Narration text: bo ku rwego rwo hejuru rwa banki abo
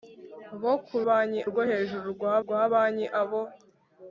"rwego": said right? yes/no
no